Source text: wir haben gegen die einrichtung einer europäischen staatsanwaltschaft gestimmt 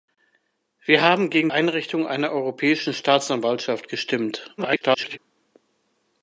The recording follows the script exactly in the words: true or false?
false